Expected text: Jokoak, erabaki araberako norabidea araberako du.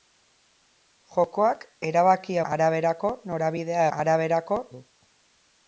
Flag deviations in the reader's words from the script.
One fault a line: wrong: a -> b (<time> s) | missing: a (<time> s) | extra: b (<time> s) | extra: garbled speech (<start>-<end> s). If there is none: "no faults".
no faults